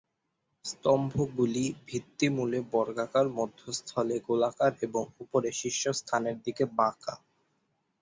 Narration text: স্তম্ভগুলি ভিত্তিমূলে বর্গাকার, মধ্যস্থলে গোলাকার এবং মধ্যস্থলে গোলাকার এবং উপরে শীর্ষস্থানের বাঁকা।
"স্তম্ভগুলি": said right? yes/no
yes